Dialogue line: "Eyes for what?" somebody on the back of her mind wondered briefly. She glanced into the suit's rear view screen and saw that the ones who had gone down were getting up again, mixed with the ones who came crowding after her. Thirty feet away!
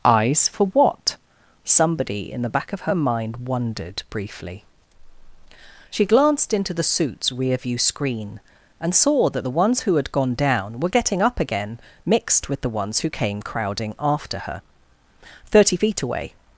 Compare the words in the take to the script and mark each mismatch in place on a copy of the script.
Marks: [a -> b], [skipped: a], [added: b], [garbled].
"Eyes for what?" somebody [on -> in] the back of her mind wondered briefly. She glanced into the suit's rear view screen and saw that the ones who had gone down were getting up again, mixed with the ones who came crowding after her. Thirty feet away!